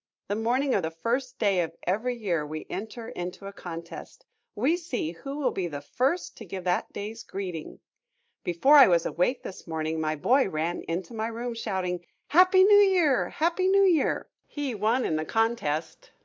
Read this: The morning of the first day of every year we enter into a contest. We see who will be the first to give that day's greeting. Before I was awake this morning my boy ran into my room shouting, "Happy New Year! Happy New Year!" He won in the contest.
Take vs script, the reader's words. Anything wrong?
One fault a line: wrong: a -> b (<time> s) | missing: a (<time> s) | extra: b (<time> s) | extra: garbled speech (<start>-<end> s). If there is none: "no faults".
no faults